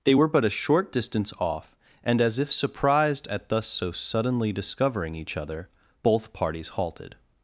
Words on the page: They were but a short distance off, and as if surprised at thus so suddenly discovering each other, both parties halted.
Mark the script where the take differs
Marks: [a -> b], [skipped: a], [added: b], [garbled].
They were but a short distance off, and as if surprised at thus so suddenly discovering each other, both parties halted.